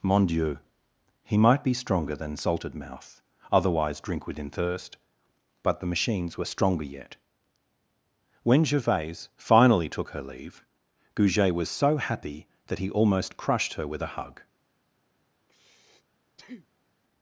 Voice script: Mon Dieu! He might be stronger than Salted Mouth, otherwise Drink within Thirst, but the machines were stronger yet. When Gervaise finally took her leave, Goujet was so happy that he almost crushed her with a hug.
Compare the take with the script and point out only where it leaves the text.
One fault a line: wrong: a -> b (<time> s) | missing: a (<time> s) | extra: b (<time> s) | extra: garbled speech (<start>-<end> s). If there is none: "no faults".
no faults